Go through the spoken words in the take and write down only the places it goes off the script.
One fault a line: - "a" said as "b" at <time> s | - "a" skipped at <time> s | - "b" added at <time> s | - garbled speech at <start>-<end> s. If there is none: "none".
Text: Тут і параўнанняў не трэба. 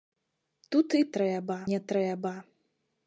- "параўнанняў" said as "трэба" at 1.2 s